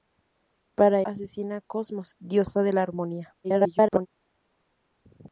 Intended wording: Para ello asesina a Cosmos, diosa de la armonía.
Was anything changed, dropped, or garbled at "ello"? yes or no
yes